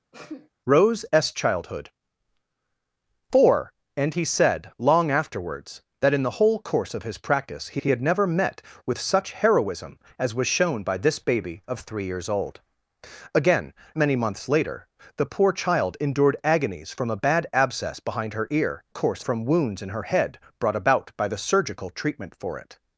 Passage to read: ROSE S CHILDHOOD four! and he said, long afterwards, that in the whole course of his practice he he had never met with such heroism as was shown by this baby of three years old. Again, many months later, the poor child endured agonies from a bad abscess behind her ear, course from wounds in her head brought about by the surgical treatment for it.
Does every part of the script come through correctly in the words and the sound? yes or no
no